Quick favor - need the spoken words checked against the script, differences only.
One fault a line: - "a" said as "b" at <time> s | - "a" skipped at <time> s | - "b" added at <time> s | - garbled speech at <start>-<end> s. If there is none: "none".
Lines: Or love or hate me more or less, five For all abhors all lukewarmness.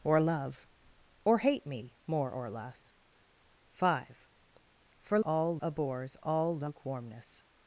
none